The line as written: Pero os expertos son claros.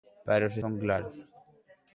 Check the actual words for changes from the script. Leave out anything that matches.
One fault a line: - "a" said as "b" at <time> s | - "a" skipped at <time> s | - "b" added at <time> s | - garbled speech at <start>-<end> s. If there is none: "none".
- "expertos" skipped at 0.6 s